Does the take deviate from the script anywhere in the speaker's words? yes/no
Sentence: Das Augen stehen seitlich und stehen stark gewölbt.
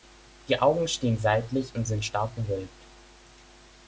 yes